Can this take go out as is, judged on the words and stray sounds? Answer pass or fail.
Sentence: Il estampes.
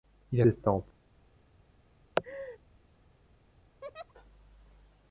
fail